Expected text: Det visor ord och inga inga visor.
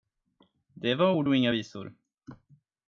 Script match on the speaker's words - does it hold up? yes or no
no